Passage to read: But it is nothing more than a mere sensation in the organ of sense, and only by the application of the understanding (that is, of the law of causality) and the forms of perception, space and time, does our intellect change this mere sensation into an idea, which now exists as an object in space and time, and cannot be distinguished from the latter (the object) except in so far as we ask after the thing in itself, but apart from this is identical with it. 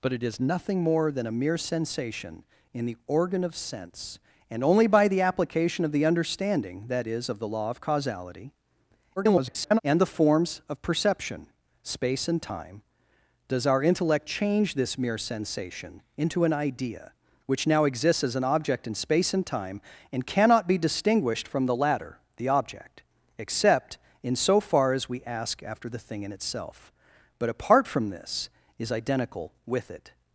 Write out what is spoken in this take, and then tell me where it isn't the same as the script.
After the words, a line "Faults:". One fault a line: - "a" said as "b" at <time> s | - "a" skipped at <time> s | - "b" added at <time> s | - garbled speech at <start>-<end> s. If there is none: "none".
But it is nothing more than a mere sensation in the organ of sense, and only by the application of the understanding (that is, of the law of causality) [garbled] and the forms of perception, space and time, does our intellect change this mere sensation into an idea, which now exists as an object in space and time, and cannot be distinguished from the latter (the object) except in so far as we ask after the thing in itself, but apart from this is identical with it.
Faults:
- garbled speech at 9.2-9.8 s